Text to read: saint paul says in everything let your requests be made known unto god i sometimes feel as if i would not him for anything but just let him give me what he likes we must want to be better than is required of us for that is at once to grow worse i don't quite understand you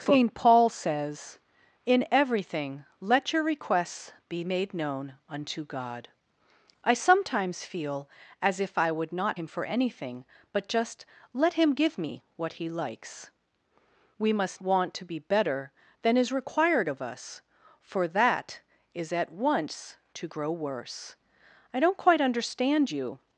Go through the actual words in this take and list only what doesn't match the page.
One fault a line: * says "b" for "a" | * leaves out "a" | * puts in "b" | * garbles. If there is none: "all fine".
all fine